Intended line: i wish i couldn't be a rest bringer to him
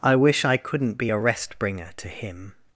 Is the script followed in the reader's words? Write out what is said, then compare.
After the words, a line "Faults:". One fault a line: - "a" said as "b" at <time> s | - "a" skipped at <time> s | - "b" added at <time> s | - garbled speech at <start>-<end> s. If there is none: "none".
i wish i couldn't be a rest bringer to him
Faults:
none